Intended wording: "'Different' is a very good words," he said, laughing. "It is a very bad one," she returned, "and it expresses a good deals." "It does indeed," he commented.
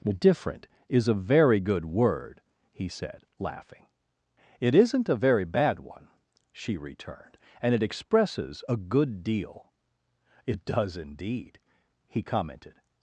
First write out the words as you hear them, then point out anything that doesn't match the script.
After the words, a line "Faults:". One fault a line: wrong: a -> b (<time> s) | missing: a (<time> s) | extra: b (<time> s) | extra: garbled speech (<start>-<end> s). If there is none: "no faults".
"'Different' is a very good word," he said, laughing. "It isn't a very bad one," she returned, "and it expresses a good deal." "It does indeed," he commented.
Faults:
wrong: words -> word (1.9 s)
wrong: is -> isn't (4.7 s)
wrong: deals -> deal (9.2 s)